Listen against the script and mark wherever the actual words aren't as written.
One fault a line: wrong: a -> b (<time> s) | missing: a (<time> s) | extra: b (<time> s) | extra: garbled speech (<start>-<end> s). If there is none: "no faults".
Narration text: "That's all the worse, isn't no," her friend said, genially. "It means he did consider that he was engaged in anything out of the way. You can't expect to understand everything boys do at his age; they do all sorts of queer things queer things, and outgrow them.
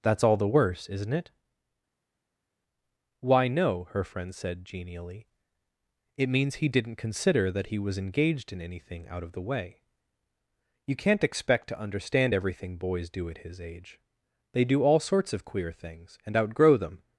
extra: it Why (1.1 s)
wrong: did -> didn't (6.7 s)
missing: queer things (16.2 s)